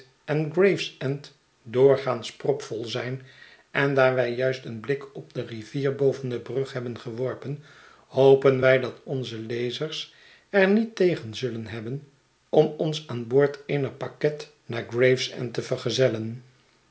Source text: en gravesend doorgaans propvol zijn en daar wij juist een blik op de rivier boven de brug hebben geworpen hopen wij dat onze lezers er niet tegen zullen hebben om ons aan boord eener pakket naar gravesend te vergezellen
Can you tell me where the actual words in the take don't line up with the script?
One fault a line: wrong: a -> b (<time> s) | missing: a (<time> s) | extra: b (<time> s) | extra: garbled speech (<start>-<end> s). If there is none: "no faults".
no faults